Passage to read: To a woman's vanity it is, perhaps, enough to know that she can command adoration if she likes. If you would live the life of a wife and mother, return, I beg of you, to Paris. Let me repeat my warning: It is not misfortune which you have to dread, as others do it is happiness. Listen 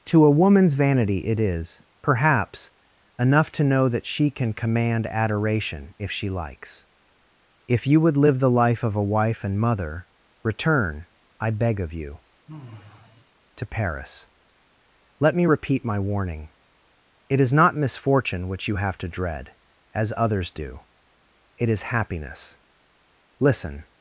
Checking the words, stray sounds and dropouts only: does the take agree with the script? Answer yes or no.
no